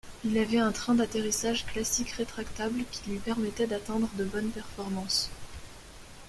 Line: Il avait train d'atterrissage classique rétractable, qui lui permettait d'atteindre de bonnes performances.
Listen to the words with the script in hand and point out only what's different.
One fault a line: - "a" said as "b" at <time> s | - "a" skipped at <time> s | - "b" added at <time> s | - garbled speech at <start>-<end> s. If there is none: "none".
- "un" added at 0.6 s